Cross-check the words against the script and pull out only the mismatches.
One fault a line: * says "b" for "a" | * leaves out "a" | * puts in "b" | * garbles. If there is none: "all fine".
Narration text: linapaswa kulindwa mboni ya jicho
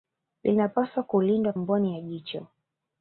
all fine